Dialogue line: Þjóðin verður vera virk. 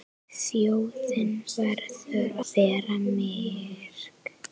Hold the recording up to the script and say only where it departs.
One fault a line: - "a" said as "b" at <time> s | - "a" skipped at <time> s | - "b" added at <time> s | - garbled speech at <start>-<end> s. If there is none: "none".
none